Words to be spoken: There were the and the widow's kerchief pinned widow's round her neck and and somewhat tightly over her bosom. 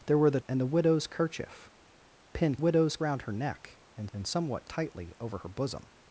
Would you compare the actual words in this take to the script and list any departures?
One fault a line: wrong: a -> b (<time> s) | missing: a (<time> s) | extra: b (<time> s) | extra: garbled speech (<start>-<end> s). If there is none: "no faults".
no faults